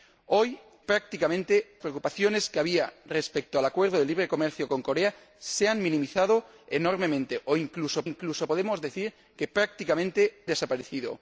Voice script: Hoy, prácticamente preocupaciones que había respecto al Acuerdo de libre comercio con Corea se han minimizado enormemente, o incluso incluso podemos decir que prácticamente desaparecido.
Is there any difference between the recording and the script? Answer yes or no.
no